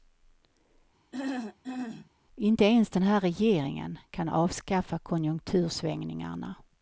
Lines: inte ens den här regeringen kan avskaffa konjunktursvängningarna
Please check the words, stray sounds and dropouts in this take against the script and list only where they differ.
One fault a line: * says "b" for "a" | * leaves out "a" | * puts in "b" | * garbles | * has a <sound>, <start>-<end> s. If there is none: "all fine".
* has a throat clearing, 1.1-2.1 s